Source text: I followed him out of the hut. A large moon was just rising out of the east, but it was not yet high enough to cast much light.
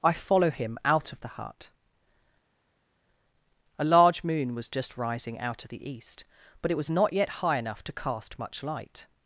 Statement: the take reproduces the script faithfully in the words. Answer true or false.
false